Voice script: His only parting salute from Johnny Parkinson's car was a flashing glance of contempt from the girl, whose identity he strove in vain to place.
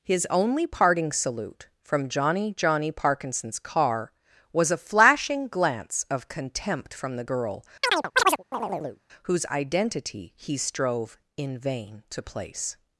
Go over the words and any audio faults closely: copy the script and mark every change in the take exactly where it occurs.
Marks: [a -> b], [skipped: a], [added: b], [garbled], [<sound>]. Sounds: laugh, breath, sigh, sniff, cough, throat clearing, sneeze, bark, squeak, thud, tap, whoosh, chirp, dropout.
His only parting salute from Johnny [added: Johnny] Parkinson's car was a flashing glance of contempt from the girl, [chirp] whose identity he strove in vain to place.